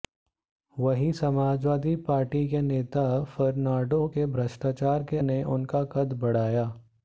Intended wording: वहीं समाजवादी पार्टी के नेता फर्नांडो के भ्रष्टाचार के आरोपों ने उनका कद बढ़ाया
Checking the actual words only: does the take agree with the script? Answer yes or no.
no